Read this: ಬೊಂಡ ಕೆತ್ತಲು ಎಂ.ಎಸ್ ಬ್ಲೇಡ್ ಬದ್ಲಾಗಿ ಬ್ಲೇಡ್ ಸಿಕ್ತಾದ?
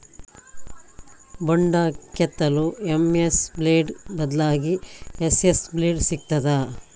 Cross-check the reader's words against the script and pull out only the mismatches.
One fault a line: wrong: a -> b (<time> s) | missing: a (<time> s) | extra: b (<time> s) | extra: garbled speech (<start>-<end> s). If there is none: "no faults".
extra: ಎಸ್.ಎಸ್ (5.2 s)